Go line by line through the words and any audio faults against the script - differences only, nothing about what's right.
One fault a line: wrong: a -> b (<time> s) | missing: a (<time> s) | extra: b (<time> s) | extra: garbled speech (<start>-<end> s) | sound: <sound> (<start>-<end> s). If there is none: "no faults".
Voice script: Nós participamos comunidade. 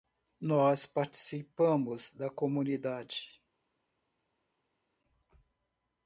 extra: da (2.1 s)